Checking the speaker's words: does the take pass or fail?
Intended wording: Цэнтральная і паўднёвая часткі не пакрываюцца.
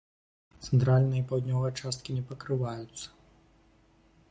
pass